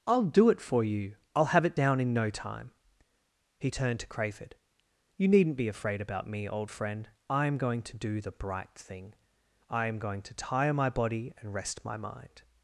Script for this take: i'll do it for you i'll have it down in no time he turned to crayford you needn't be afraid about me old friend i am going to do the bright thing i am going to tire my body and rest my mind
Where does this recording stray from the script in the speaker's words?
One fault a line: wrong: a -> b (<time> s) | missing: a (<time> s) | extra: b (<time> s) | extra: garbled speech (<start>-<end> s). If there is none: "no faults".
no faults